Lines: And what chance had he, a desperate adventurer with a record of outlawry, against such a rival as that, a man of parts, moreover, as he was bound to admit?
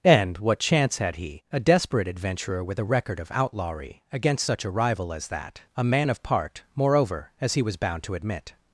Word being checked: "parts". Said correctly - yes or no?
no